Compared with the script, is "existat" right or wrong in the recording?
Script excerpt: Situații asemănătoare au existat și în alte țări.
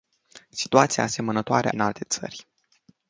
wrong